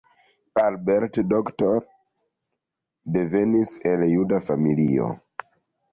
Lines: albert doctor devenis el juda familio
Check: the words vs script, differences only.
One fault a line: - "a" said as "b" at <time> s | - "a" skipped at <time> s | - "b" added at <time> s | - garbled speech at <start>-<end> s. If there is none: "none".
none